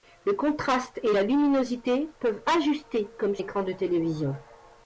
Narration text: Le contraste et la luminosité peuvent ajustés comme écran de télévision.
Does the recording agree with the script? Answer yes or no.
yes